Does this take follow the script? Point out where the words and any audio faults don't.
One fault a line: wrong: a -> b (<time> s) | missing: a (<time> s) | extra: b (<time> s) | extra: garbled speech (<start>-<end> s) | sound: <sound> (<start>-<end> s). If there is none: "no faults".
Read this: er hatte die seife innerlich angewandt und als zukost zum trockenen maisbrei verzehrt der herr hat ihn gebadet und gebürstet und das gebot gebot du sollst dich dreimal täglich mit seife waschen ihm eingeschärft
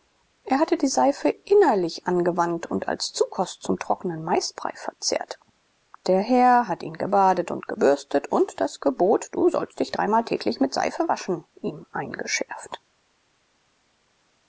missing: gebot (9.3 s)